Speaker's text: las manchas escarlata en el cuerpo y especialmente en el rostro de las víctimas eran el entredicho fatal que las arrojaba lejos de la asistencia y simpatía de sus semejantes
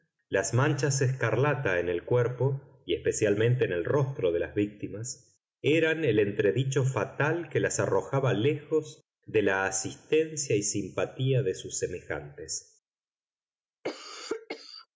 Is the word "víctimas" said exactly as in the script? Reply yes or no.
yes